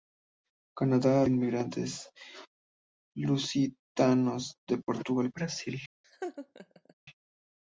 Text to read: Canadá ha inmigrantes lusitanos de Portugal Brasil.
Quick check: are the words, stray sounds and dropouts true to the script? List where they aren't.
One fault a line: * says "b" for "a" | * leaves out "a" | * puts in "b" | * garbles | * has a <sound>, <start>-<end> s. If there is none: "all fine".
* has a laugh, 6.0-6.9 s